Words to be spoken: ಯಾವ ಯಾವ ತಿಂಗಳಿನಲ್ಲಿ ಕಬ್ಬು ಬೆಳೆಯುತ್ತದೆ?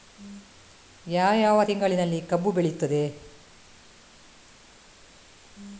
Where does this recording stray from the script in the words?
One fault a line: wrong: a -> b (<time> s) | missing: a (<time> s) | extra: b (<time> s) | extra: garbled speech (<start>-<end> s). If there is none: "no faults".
no faults